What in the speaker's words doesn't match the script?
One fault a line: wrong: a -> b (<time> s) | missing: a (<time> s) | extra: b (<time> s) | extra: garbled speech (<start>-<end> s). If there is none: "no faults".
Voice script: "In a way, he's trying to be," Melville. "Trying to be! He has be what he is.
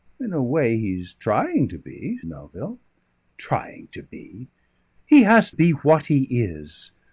no faults